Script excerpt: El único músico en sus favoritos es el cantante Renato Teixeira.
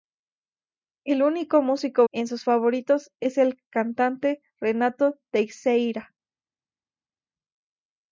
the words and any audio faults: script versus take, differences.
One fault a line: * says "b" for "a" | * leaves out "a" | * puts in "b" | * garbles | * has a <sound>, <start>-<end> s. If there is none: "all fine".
all fine